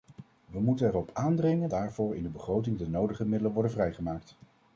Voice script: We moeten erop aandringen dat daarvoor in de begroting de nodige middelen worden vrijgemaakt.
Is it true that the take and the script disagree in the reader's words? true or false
true